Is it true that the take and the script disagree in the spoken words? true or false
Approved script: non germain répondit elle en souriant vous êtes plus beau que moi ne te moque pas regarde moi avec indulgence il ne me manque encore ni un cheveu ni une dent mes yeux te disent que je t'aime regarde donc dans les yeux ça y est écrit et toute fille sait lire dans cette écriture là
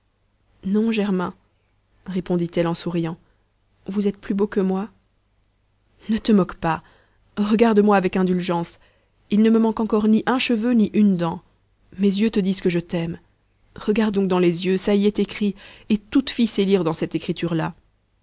false